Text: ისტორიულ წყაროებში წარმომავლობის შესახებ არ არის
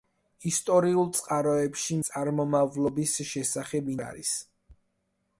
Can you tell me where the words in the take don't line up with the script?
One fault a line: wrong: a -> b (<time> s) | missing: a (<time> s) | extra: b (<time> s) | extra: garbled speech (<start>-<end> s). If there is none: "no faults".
no faults